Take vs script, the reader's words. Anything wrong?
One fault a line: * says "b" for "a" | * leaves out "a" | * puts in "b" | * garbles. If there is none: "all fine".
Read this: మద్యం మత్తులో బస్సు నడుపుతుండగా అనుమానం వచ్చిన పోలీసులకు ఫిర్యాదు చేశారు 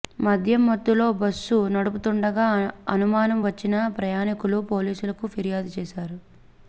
* puts in "ప్రయాణికులు"